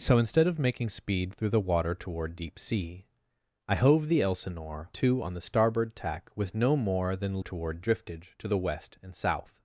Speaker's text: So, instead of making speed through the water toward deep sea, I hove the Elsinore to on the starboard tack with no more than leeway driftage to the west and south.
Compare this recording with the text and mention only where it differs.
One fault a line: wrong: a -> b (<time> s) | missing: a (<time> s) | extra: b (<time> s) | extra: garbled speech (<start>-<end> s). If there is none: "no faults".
wrong: leeway -> toward (7.4 s)